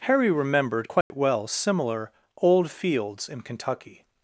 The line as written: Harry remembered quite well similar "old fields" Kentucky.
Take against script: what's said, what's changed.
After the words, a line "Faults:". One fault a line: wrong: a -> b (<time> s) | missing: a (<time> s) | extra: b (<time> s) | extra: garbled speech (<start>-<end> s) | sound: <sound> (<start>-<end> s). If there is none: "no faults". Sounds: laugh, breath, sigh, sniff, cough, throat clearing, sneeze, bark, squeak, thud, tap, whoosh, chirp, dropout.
Harry remembered quite well similar "old fields" in Kentucky.
Faults:
sound: dropout (1.0-1.1 s)
extra: in (3.3 s)